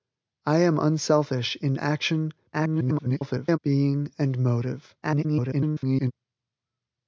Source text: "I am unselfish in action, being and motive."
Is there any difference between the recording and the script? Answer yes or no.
yes